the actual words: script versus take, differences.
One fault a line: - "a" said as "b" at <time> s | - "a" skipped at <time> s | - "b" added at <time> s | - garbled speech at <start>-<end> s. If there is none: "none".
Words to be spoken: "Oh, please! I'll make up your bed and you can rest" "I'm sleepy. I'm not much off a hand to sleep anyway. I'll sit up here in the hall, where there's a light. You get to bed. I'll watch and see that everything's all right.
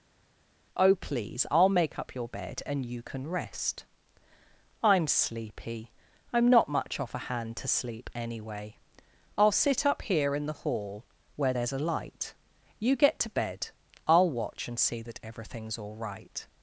none